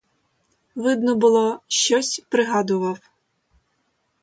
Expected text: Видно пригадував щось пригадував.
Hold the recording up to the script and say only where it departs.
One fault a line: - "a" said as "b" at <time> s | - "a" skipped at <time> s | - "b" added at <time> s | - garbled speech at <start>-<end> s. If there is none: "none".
- "пригадував" said as "було" at 1.1 s